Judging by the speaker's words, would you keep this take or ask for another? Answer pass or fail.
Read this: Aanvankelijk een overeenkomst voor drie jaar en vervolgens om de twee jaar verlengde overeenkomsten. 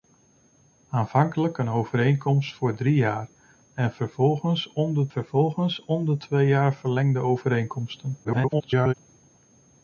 fail